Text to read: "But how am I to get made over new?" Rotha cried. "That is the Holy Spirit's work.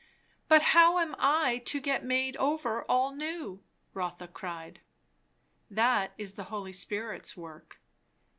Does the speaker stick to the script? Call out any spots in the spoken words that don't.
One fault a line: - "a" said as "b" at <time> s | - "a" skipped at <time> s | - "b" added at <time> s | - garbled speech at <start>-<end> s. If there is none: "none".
- "all" added at 2.9 s